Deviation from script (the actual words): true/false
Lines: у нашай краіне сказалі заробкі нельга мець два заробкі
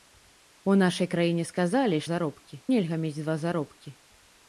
false